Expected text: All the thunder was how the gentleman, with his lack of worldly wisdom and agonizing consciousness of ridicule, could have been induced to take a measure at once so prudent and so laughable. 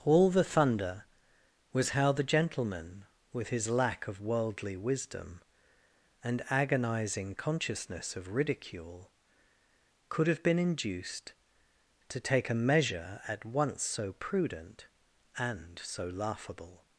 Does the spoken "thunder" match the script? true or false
true